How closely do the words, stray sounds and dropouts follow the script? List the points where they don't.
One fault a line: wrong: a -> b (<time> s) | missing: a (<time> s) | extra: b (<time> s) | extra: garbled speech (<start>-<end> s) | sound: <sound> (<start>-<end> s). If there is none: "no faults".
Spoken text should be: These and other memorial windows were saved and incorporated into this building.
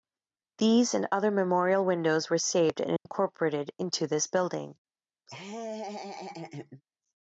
sound: dropout (3.0-3.1 s)
sound: laugh (5.3-6.8 s)